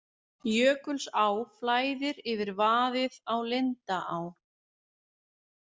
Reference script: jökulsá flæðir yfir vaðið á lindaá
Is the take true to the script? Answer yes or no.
yes